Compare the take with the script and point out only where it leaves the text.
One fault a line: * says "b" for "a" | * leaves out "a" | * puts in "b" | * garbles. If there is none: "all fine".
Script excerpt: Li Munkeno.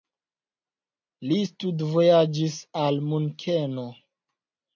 * puts in "studvojaĝis al"